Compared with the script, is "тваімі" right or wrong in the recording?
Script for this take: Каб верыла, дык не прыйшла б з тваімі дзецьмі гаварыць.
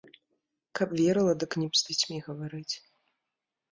wrong